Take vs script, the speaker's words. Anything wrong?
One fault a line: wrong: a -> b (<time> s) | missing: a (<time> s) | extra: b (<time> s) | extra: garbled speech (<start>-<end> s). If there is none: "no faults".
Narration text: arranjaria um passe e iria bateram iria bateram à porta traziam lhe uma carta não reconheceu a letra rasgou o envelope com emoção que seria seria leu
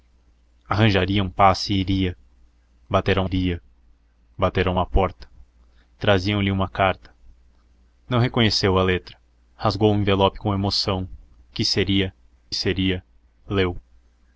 no faults